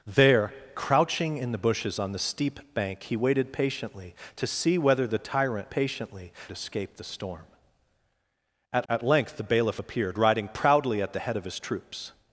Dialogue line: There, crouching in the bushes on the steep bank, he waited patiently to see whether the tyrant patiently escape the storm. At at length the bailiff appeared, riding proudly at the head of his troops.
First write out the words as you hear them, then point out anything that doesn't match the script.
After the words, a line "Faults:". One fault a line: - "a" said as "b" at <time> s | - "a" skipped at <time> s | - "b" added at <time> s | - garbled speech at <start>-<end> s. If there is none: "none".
There, crouching in the bushes on the steep bank, he waited patiently to see whether the tyrant patiently escape the storm. At at length the bailiff appeared, riding proudly at the head of his troops.
Faults:
none